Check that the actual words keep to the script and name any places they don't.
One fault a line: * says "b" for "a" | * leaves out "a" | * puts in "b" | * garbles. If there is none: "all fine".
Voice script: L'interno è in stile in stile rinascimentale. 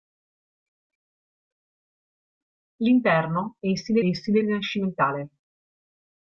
all fine